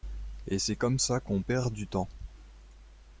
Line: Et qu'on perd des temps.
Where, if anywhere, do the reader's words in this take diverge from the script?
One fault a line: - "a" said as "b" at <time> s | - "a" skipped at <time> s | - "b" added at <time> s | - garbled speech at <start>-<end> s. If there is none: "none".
- "c'est comme ça" added at 0.5 s
- "des" said as "du" at 1.7 s